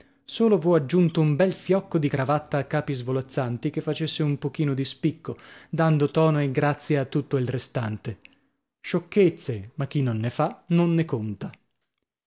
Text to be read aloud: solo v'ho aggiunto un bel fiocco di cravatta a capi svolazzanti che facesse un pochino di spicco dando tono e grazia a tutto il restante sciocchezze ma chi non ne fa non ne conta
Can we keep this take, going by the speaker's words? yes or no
yes